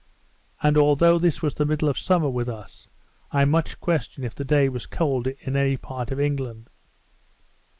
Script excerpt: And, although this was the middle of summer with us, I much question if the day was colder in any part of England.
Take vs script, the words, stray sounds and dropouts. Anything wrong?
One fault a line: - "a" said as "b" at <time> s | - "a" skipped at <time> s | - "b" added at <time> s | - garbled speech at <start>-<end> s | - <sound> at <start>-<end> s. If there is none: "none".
none